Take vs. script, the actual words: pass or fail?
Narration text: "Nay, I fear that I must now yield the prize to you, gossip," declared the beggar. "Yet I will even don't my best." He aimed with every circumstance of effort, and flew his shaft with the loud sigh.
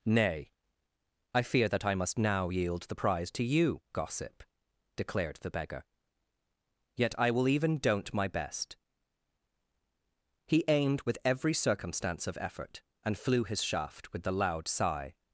pass